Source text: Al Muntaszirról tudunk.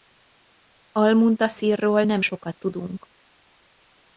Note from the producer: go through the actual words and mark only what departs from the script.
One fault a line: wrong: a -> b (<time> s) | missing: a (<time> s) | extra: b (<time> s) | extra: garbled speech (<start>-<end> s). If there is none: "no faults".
extra: nem sokat (2.0 s)